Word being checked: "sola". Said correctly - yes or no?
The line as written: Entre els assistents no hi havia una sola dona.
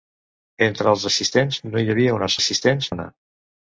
no